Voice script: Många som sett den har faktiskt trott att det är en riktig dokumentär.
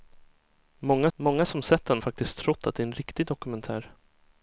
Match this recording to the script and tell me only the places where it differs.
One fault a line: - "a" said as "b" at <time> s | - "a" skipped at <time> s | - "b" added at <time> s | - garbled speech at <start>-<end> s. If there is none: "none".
- "många" added at 1.2 s
- "har" skipped at 2.0 s